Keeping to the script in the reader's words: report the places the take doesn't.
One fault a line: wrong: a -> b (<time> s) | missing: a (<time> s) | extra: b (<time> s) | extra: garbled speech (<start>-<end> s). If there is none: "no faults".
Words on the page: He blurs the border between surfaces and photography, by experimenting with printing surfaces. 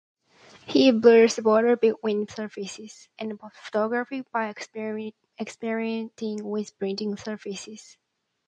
no faults